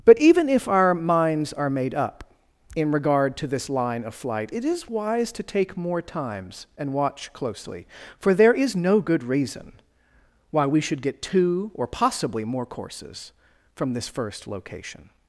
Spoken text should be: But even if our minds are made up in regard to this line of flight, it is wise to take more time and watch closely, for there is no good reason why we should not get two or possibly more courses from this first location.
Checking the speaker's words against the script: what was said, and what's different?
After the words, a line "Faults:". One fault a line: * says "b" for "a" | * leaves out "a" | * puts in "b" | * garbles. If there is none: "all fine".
But even if our minds are made up in regard to this line of flight, it is wise to take more times and watch closely, for there is no good reason why we should get two or possibly more courses from this first location.
Faults:
* says "times" for "time"
* leaves out "not"